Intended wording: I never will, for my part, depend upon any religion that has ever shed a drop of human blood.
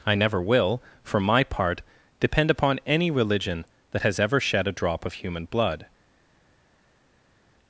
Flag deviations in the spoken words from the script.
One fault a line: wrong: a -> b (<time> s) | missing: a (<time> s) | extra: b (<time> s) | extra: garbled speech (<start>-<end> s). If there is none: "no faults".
no faults